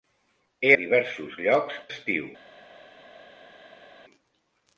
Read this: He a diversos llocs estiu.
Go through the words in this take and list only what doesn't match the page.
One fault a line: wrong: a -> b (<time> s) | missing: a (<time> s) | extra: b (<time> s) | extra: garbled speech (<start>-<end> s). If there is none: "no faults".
no faults